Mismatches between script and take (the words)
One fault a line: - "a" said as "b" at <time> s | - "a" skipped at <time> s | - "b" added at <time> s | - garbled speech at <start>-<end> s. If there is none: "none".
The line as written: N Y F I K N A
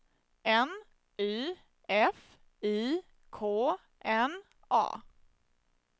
none